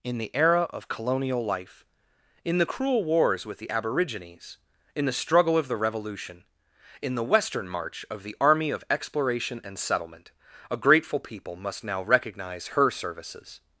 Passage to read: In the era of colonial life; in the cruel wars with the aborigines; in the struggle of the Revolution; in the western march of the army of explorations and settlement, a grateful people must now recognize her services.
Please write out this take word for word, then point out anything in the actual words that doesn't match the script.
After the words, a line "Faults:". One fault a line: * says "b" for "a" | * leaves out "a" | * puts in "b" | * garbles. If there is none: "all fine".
In the era of colonial life; in the cruel wars with the aborigines; in the struggle of the Revolution; in the western march of the army of exploration and settlement, a grateful people must now recognize her services.
Faults:
* says "exploration" for "explorations"